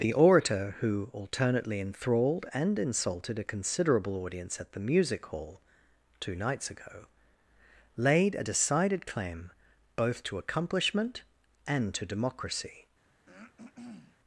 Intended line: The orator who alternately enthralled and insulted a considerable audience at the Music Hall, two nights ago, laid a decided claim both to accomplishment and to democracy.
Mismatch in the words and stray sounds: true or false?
true